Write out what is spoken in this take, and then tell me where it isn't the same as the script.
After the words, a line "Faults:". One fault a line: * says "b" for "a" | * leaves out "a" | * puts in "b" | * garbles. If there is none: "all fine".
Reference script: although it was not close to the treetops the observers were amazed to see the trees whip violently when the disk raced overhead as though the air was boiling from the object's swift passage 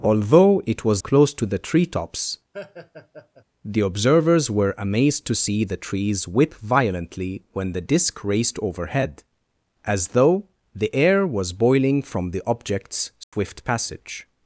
although it was close to the treetops the observers were amazed to see the trees whip violently when the disk raced overhead as though the air was boiling from the object's swift passage
Faults:
* leaves out "not"